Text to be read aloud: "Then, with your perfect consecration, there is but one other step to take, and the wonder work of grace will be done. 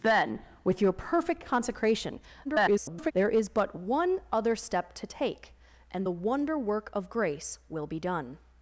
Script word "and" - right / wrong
right